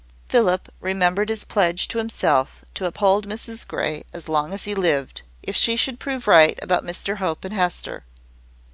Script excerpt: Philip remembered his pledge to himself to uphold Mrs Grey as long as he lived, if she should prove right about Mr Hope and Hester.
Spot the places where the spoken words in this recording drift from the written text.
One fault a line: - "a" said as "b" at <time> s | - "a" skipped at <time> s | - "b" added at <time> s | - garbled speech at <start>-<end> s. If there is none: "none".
none